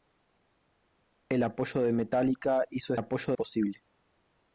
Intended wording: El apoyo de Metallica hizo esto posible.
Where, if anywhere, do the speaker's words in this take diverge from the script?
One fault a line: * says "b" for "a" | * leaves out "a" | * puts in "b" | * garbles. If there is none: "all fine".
* says "apoyo" for "esto"